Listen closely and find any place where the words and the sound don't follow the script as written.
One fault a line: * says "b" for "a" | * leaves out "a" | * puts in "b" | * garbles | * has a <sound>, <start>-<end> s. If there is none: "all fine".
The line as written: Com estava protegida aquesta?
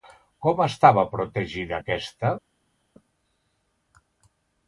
all fine